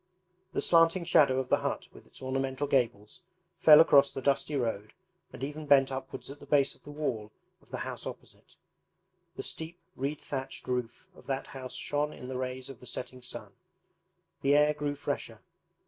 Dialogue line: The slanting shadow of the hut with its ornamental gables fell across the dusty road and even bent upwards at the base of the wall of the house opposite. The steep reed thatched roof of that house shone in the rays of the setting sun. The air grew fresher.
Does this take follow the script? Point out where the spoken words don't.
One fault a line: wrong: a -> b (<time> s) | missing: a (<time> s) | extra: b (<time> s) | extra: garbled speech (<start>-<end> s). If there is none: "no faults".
no faults